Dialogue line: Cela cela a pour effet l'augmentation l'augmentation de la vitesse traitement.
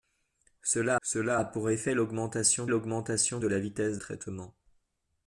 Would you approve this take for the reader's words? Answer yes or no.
yes